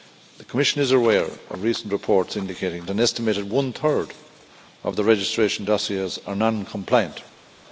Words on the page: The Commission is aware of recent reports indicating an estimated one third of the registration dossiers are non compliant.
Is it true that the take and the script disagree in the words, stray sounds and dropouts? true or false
false